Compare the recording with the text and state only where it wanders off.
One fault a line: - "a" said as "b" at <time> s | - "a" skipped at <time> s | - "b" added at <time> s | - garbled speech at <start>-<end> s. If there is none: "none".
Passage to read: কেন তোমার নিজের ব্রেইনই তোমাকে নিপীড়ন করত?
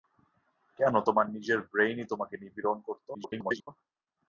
- garbled speech at 3.1-3.7 s